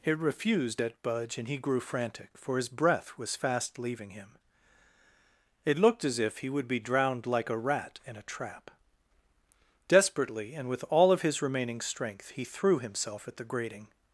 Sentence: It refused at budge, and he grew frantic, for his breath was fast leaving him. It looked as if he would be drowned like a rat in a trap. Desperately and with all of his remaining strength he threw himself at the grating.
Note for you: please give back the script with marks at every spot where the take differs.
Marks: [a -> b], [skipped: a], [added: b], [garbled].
It refused at budge, and he grew frantic, for his breath was fast leaving him. It looked as if he would be drowned like a rat in a trap. Desperately and with all of his remaining strength he threw himself at the grating.